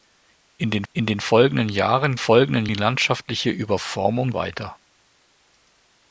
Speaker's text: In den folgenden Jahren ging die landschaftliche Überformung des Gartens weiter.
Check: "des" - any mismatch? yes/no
yes